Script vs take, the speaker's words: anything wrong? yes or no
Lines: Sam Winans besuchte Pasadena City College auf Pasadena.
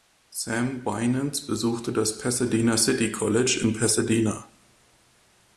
yes